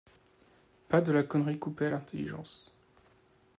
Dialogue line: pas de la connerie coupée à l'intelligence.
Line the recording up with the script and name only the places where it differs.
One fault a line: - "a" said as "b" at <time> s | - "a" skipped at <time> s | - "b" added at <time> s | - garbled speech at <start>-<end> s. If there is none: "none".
none